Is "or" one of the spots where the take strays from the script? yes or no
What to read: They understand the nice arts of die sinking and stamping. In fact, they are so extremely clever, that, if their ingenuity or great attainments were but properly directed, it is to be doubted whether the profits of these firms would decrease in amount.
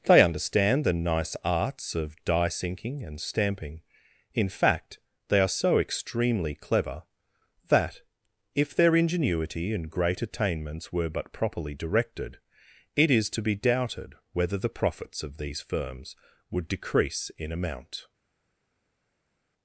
yes